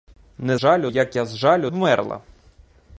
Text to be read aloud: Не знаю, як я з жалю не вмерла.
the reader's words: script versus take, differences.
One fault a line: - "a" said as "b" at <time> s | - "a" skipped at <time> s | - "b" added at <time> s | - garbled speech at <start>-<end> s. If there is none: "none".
- "знаю" said as "жалю" at 0.6 s
- "не" skipped at 1.7 s